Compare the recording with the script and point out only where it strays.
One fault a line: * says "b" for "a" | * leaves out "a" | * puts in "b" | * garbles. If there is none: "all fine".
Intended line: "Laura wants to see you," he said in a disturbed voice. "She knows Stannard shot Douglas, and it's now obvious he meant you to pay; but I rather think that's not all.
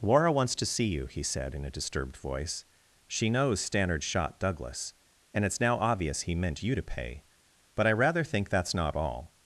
all fine